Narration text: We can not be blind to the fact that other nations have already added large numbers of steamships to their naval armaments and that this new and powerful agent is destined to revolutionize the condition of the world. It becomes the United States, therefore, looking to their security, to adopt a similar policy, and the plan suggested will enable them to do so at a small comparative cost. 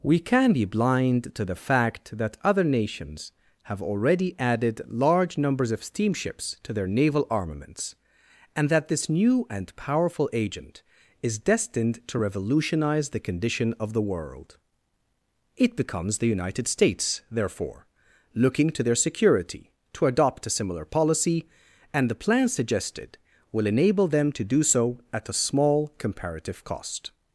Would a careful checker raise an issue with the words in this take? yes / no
yes